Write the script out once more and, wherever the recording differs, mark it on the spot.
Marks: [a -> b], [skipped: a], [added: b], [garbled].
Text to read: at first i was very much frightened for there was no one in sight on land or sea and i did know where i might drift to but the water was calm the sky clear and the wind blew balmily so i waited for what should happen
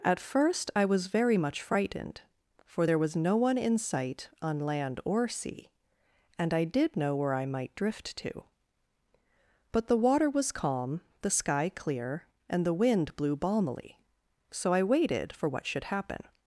at first i was very much frightened for there was no one in sight on land or sea and i did know where i might drift to but the water was calm the sky clear and the wind blew balmily so i waited for what should happen